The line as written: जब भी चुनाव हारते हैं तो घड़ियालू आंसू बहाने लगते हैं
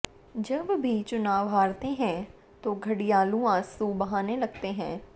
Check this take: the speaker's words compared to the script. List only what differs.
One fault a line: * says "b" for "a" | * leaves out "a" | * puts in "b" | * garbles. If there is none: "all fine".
all fine